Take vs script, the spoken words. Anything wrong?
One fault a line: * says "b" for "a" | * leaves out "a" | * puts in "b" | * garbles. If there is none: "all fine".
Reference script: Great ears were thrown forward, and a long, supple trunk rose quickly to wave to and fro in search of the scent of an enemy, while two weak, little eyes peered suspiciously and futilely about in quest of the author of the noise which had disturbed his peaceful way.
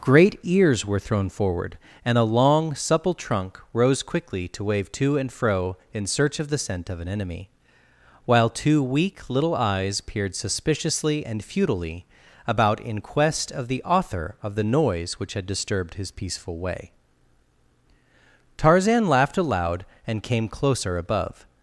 * puts in "Tarzan laughed aloud and came closer above"